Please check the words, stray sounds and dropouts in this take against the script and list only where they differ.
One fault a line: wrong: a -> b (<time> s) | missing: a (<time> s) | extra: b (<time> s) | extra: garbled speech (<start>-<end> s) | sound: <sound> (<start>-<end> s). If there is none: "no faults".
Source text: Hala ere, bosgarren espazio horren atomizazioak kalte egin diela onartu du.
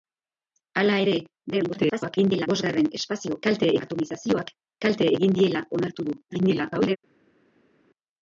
extra: garbled speech (1.5-2.5 s)
wrong: horren -> kalte (3.5 s)
extra: garbled speech (6.3-7.0 s)